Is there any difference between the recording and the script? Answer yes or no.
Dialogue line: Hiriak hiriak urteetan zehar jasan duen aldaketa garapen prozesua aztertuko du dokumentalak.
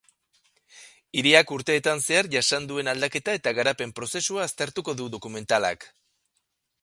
yes